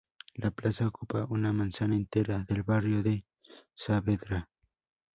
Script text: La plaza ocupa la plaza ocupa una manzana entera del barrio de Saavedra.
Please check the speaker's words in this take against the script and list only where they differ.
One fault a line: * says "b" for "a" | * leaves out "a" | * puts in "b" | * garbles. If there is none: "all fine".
* leaves out "la plaza ocupa"